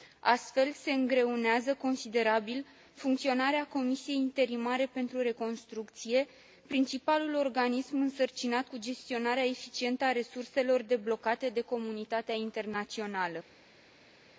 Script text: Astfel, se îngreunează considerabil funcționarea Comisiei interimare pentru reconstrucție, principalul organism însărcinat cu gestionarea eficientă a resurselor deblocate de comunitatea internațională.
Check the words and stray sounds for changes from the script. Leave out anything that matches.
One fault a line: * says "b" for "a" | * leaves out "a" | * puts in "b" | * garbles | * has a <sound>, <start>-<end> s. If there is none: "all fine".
all fine